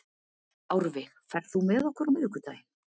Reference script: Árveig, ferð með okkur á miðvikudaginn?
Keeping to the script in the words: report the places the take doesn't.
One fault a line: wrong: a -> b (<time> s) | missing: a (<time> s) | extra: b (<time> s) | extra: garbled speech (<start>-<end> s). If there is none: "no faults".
extra: þú (1.5 s)